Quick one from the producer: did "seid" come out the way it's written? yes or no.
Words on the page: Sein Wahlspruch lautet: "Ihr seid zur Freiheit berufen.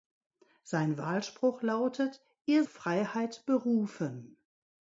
no